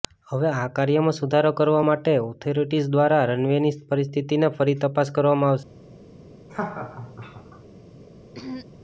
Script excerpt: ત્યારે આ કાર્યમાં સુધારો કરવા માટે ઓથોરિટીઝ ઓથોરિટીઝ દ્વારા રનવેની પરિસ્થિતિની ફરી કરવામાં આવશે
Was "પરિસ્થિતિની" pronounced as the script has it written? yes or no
yes